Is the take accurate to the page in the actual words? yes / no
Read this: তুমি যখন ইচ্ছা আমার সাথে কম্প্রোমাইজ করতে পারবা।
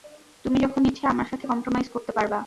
yes